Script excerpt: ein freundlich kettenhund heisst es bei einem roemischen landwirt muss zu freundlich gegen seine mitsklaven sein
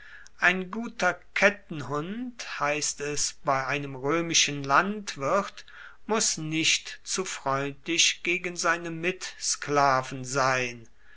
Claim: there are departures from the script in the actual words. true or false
true